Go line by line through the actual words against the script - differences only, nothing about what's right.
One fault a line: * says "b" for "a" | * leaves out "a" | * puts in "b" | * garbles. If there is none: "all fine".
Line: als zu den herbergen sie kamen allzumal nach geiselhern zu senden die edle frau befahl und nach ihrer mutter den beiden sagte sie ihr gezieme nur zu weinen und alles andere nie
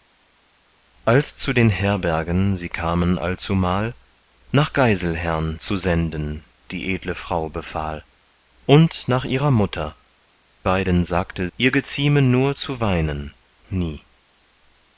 * leaves out "den"
* leaves out "sie"
* leaves out "und alles andere"